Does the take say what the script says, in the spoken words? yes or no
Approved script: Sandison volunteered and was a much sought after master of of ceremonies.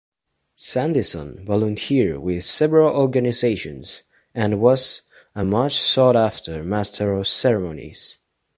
no